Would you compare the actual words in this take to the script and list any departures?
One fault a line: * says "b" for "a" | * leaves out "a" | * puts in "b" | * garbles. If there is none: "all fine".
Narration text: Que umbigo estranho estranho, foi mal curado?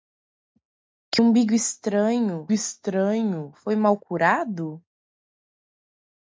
all fine